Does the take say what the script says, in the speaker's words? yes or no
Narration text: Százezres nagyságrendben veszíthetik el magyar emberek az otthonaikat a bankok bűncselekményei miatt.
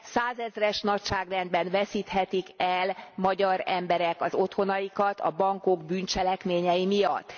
yes